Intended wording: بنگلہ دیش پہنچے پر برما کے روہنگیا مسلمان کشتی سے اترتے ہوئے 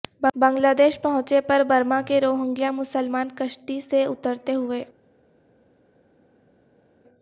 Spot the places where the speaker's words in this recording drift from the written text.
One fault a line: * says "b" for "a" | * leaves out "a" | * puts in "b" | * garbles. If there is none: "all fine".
all fine